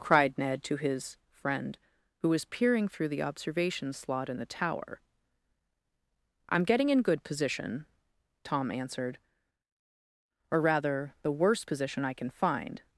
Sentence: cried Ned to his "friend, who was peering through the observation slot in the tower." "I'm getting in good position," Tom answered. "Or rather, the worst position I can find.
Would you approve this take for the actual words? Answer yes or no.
yes